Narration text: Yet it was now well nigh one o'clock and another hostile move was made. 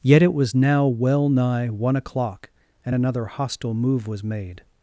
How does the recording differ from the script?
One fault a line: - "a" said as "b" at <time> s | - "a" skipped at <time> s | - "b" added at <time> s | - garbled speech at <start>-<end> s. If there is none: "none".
none